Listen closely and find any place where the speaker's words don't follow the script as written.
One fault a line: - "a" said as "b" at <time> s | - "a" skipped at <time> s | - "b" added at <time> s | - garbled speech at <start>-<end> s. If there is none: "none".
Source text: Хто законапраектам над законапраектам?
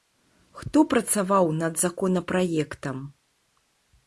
- "законапраектам" said as "працаваў" at 0.9 s